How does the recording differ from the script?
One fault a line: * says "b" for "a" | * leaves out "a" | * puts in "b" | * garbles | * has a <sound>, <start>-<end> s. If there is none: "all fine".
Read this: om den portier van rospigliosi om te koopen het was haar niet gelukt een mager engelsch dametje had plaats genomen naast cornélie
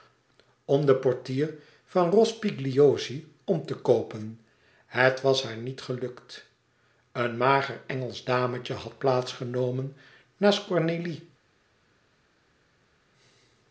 all fine